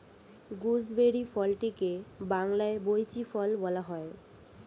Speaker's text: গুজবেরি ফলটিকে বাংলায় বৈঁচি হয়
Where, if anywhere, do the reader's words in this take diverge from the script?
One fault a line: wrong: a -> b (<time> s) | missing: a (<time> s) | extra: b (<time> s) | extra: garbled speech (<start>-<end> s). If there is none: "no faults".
extra: ফল বলা (3.3 s)